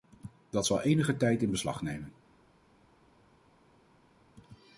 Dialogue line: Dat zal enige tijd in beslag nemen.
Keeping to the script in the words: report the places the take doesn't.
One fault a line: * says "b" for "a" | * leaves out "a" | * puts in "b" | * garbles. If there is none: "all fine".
all fine